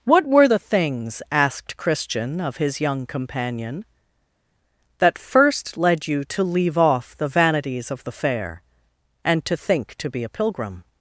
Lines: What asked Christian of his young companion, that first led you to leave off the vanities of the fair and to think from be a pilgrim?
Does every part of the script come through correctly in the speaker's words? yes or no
no